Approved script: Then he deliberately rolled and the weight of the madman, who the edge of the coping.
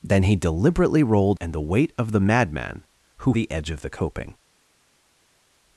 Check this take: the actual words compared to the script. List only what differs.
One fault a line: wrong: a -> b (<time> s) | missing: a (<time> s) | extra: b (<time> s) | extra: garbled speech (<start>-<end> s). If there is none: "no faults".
no faults